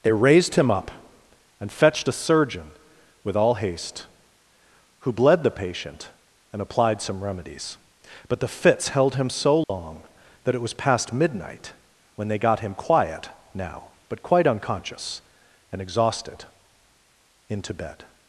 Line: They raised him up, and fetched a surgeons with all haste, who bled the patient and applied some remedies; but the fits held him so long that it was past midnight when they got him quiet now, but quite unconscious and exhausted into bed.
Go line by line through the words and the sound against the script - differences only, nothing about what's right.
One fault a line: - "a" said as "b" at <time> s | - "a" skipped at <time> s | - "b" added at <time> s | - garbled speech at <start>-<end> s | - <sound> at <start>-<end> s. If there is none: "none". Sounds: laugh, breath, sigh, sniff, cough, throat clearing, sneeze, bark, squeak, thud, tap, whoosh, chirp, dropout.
- "surgeons" said as "surgeon" at 2.1 s
- dropout at 9.6-9.7 s